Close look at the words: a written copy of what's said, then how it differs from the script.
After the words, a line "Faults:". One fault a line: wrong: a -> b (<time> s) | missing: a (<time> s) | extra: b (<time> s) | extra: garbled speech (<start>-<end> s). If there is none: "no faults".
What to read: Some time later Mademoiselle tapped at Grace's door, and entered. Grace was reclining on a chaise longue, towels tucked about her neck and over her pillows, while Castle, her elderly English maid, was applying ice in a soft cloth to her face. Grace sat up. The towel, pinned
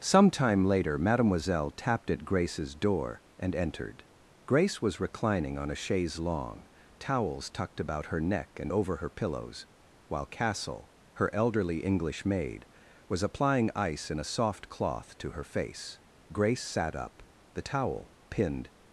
Some time later Mademoiselle tapped at Grace's door, and entered. Grace was reclining on a chaise longue, towels tucked about her neck and over her pillows, while Castle, her elderly English maid, was applying ice in a soft cloth to her face. Grace sat up. The towel, pinned
Faults:
no faults